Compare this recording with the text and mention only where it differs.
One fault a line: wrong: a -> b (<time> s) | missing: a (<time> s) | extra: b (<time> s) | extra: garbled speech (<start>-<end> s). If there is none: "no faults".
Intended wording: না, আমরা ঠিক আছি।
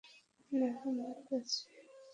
missing: ঠিক (1.1 s)